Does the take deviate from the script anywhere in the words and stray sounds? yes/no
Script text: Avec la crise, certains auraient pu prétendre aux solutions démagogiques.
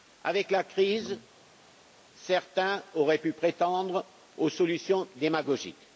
no